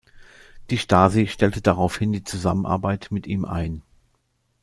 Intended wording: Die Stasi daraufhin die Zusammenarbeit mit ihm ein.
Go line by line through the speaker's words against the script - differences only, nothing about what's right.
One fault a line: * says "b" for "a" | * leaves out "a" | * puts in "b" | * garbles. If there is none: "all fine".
* puts in "stellte"